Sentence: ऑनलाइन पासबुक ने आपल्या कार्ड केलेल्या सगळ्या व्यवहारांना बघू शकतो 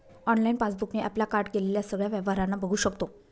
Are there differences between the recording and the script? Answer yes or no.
no